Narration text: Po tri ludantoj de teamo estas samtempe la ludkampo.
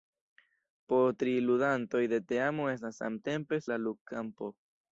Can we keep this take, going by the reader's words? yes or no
yes